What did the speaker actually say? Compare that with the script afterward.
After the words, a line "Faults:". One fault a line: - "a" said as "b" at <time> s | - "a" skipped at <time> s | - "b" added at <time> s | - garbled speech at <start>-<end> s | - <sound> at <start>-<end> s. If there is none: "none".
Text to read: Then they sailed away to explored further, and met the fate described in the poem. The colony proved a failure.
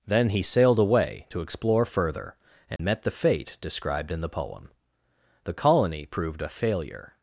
Then he sailed away to explore further, and met the fate described in the poem. The colony proved a failure.
Faults:
- "they" said as "he" at 0.3 s
- "explored" said as "explore" at 1.4 s
- dropout at 2.8-2.8 s